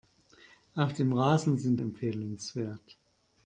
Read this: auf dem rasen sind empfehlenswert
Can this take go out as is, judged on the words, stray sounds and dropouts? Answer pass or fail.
pass